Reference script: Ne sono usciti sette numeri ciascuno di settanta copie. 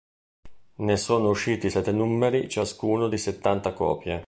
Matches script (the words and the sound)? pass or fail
pass